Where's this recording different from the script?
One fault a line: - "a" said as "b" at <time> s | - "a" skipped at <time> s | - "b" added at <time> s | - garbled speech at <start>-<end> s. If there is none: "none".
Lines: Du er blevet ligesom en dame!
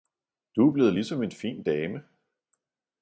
- "fin" added at 1.3 s